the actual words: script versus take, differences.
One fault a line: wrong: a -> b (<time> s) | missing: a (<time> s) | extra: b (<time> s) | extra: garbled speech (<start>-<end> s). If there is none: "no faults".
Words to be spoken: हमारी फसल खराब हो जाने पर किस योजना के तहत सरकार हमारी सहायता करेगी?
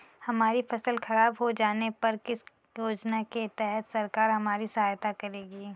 no faults